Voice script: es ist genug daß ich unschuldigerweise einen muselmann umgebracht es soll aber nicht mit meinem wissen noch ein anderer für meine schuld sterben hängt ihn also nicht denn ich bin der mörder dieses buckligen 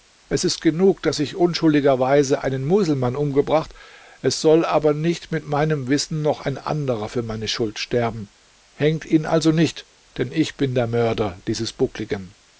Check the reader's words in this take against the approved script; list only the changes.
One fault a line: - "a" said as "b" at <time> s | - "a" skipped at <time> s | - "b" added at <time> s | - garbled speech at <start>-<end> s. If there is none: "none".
none